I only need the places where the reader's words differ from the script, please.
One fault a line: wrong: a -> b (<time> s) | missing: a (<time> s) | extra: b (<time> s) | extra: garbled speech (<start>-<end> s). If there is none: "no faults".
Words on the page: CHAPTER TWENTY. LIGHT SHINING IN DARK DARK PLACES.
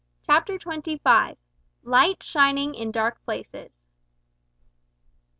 extra: FIVE (1.0 s)
missing: DARK (3.2 s)